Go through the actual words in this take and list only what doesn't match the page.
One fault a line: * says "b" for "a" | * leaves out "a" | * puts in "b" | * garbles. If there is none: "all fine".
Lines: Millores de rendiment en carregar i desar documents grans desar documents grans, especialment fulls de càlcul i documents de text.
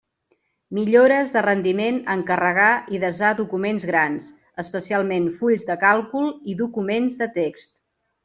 * leaves out "desar documents grans"